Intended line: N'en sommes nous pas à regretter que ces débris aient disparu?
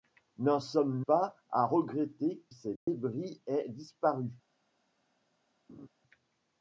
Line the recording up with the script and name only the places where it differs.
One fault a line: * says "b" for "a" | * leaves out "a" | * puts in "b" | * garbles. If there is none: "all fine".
* leaves out "nous"
* leaves out "que"